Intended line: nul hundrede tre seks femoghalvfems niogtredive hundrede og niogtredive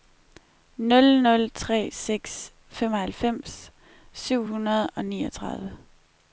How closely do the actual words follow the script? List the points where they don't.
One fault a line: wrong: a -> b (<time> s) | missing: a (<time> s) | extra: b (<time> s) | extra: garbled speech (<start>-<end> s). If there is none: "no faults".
wrong: hundrede -> nul (1.2 s)
wrong: niogtredive -> syv (4.1 s)